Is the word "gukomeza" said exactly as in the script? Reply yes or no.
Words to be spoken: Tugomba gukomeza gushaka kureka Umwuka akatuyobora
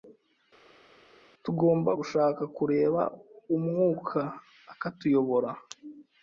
no